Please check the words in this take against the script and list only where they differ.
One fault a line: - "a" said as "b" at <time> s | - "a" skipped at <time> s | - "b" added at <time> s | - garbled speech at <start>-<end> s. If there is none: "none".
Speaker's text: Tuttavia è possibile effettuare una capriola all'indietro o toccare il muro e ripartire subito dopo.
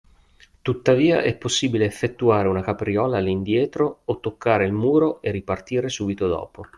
none